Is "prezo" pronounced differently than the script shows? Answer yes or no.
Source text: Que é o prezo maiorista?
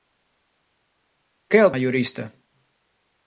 yes